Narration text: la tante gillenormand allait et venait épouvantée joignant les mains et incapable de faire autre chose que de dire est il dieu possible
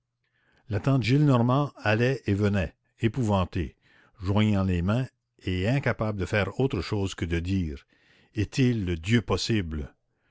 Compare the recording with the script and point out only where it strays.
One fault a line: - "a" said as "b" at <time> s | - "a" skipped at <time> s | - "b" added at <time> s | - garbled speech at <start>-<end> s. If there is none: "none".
none